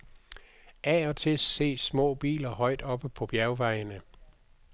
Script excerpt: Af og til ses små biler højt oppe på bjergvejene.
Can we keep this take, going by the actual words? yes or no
yes